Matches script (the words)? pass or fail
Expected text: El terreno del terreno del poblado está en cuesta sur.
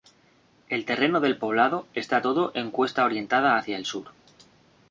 fail